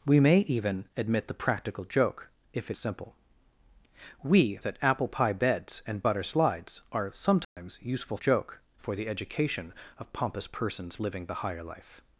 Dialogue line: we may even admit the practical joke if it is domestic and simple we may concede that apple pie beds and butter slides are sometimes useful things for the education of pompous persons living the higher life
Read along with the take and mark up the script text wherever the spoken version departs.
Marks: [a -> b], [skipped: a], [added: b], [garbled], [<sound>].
we may even admit the practical joke if it [skipped: is domestic and] simple we [skipped: may concede] that apple pie beds and butter slides are sometimes [dropout] useful [things -> joke] for the education of pompous persons living the higher life